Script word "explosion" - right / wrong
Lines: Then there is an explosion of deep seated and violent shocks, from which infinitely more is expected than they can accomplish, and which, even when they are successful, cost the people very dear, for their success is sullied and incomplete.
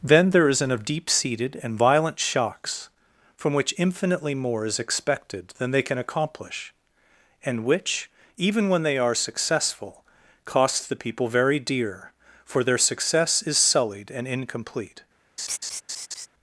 wrong